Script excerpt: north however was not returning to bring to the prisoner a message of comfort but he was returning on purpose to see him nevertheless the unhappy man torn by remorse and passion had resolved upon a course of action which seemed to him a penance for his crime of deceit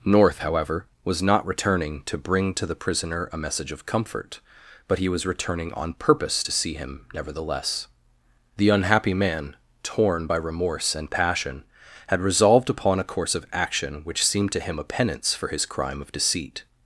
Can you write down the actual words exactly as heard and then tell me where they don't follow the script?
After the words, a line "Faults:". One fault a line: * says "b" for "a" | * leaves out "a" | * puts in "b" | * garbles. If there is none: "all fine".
north however was not returning to bring to the prisoner a message of comfort but he was returning on purpose to see him nevertheless the unhappy man torn by remorse and passion had resolved upon a course of action which seemed to him a penance for his crime of deceit
Faults:
all fine